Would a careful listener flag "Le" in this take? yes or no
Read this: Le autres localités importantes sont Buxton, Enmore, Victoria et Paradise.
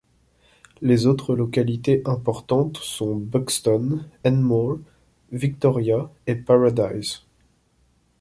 yes